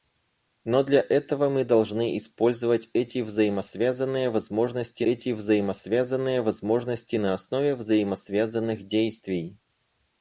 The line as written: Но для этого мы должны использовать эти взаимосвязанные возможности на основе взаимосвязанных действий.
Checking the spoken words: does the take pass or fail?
fail